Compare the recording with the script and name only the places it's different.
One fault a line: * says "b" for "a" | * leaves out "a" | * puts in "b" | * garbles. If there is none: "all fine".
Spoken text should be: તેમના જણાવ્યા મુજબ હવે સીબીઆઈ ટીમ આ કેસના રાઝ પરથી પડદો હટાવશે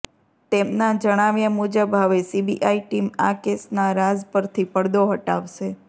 all fine